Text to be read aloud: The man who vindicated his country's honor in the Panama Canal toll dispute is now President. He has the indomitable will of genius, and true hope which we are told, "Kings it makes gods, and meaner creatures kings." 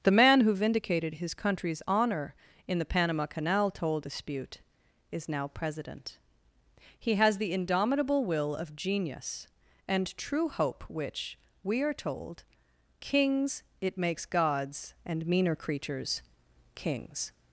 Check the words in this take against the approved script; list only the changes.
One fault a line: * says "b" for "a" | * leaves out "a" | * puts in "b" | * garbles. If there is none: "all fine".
all fine